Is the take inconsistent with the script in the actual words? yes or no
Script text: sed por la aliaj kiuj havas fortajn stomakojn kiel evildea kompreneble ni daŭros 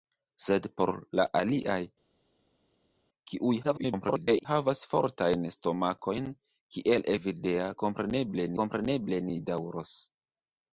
yes